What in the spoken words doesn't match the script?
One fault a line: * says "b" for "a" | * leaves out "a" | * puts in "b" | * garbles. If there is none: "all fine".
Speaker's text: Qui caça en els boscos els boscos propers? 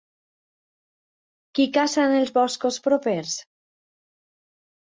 * leaves out "els boscos"